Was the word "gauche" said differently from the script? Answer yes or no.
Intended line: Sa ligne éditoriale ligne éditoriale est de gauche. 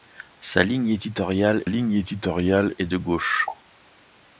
no